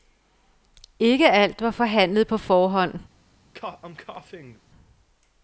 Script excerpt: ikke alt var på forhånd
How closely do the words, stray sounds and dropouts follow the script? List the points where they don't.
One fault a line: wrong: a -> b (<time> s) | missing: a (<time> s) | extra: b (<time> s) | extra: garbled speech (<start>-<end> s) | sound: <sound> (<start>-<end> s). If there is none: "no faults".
extra: forhandlet (1.7 s)
sound: cough (3.5-4.6 s)